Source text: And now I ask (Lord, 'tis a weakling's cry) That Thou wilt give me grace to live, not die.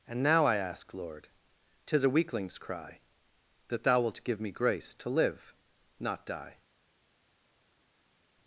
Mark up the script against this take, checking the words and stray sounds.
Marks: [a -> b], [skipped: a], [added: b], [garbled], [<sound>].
And now I ask (Lord, 'tis a weakling's cry) That Thou wilt give me grace to live, not die.